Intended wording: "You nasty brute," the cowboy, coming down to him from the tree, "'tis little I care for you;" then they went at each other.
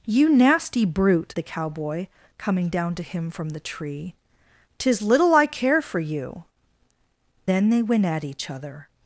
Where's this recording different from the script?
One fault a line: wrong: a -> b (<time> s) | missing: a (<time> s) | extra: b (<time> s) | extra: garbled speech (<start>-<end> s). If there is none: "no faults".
no faults